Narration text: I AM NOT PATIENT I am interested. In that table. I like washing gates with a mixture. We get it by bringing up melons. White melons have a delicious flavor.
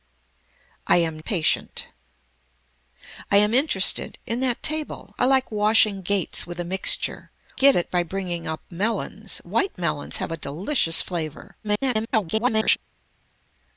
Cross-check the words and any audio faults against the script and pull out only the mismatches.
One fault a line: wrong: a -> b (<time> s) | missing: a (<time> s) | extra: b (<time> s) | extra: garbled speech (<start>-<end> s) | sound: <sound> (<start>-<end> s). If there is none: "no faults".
missing: NOT (1.2 s)
missing: We (7.3 s)
extra: garbled speech (11.6-12.8 s)